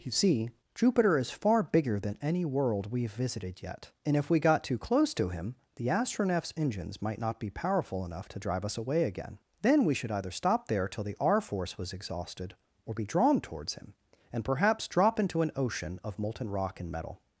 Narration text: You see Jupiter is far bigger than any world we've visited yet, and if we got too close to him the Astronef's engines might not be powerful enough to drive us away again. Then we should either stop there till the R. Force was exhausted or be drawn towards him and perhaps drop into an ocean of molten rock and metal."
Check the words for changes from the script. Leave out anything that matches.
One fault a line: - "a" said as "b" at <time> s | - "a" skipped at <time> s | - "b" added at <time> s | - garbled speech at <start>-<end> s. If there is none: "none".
none